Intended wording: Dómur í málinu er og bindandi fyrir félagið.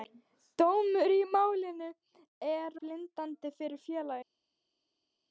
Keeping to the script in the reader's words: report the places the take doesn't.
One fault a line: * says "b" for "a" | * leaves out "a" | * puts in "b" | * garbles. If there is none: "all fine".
* leaves out "og"